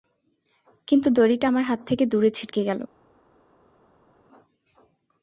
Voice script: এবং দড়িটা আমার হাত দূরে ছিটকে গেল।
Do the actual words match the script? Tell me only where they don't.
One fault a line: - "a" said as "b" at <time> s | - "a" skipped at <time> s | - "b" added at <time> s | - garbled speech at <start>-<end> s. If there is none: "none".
- "এবং" said as "কিন্তু" at 0.9 s
- "থেকে" added at 1.9 s